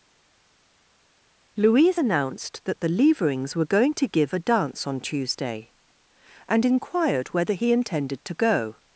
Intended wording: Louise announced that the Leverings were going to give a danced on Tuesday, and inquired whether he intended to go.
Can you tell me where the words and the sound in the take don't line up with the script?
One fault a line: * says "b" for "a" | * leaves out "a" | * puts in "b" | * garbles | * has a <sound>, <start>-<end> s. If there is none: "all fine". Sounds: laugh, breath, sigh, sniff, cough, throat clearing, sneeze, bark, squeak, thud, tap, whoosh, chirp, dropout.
* says "dance" for "danced"